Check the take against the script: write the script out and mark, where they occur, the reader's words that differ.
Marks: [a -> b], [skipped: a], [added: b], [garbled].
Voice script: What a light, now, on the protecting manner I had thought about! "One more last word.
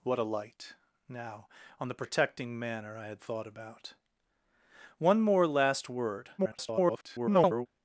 What a light, now, on the protecting manner I had thought about! "One more last word. [garbled]